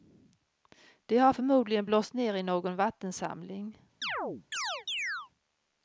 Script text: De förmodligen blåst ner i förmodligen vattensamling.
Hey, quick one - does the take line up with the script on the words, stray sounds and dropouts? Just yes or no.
no